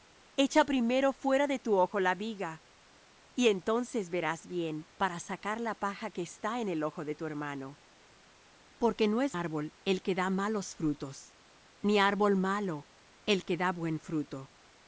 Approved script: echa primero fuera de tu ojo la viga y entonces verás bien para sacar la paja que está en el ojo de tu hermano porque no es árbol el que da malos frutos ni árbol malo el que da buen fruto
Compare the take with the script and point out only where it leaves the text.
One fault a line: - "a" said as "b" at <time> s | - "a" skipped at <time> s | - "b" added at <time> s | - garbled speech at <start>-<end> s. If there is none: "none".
none